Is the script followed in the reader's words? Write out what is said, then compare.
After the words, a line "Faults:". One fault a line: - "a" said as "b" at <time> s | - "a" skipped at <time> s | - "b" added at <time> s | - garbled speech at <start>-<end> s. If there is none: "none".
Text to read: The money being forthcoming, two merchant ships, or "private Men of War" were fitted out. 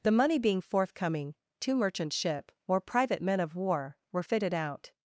The money being forthcoming, two merchant ship, or "private Men of War" were fitted out.
Faults:
- "ships" said as "ship" at 2.1 s